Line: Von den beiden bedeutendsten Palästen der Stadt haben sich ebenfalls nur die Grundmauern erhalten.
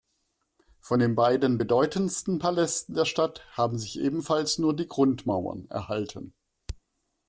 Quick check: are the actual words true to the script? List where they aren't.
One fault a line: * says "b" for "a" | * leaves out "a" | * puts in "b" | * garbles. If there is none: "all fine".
all fine